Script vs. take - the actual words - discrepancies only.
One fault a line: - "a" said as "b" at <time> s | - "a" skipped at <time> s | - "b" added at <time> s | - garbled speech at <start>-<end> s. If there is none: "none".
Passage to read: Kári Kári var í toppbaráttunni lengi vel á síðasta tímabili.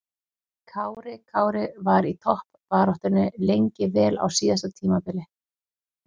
none